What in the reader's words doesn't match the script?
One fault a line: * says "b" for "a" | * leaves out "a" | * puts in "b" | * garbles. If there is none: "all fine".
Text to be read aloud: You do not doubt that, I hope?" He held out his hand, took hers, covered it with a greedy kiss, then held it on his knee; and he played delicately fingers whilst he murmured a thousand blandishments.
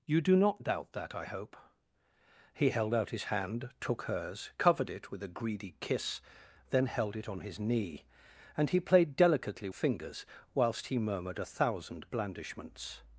all fine